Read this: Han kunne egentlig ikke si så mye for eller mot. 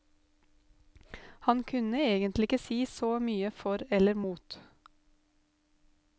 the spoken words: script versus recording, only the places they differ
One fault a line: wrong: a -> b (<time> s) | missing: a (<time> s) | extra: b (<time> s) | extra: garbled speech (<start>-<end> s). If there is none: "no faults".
no faults